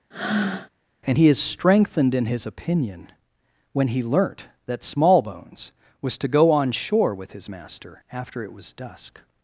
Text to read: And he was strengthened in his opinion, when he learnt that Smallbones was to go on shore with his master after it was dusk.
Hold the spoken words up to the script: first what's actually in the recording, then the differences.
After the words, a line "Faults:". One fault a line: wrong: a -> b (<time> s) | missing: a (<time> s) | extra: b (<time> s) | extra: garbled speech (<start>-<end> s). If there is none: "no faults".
And he is strengthened in his opinion, when he learnt that Smallbones was to go on shore with his master after it was dusk.
Faults:
wrong: was -> is (1.3 s)